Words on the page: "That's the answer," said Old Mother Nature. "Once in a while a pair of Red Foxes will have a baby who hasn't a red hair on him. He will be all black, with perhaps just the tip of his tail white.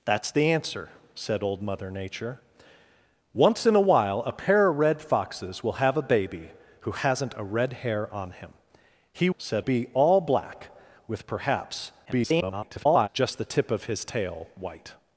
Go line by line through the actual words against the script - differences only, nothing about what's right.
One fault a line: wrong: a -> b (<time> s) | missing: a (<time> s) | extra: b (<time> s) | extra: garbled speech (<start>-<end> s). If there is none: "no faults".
wrong: will -> said (9.4 s)
extra: garbled speech (12.1-13.1 s)